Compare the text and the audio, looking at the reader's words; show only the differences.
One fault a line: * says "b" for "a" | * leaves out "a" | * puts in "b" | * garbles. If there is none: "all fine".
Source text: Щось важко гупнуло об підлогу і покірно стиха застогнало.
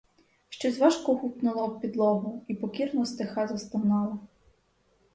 all fine